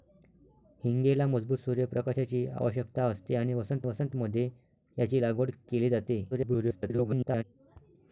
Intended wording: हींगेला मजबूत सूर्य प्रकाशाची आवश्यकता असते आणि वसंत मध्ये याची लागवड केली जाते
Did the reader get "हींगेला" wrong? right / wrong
right